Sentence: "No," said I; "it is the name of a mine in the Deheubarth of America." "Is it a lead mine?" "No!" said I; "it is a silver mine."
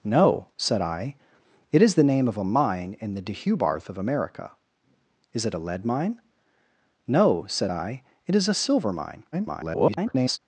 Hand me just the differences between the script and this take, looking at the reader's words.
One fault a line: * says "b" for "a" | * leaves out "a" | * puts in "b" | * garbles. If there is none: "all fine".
* garbles